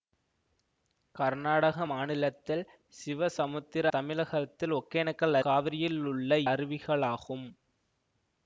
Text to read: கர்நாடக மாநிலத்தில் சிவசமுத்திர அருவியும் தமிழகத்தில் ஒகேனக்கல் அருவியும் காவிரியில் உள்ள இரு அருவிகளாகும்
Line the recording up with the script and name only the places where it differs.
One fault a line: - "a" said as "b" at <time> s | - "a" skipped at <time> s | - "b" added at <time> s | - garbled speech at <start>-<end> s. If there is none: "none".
- "அருவியும்" skipped at 3.9 s
- "அருவியும்" skipped at 5.4 s
- "இரு" skipped at 6.3 s